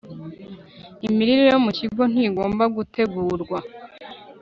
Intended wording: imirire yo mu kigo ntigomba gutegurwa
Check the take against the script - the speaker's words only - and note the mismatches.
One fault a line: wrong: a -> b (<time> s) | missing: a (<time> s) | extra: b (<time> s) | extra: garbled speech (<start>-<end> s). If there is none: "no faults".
no faults